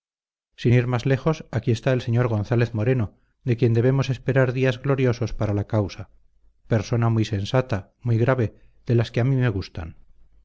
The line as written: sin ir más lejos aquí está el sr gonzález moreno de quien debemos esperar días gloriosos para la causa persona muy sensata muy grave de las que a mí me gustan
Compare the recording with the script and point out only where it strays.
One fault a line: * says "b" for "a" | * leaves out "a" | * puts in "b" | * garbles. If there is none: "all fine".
all fine